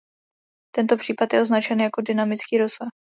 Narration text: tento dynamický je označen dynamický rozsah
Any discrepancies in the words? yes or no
yes